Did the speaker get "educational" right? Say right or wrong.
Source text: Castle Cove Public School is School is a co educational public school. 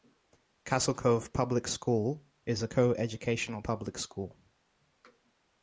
right